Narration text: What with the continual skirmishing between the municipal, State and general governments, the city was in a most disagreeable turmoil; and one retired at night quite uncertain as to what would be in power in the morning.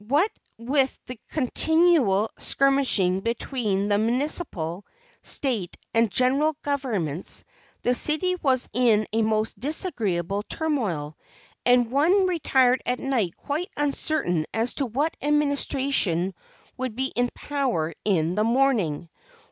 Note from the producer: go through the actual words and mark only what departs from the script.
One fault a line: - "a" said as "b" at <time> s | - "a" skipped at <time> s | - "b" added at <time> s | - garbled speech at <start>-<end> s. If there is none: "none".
- "administration" added at 15.2 s